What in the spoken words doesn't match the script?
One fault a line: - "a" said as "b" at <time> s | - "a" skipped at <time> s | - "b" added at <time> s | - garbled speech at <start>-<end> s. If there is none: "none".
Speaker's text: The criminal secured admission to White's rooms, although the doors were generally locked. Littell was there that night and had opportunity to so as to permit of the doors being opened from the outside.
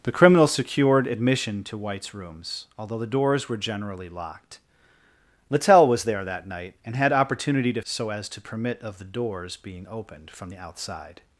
none